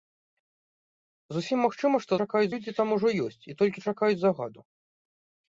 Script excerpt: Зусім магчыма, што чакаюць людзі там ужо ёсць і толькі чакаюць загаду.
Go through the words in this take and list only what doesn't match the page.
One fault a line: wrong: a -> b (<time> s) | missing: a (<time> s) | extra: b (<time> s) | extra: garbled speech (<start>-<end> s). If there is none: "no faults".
no faults